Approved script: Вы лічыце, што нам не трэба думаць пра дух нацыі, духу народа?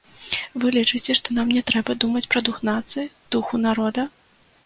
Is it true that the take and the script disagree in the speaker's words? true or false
false